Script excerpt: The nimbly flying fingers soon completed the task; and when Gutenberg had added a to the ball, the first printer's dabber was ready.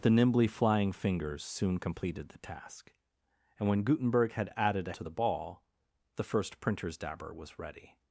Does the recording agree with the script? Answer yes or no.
yes